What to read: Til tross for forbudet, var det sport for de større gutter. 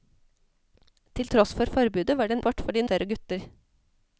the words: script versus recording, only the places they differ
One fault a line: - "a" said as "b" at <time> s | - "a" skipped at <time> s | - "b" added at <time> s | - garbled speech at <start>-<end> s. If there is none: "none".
none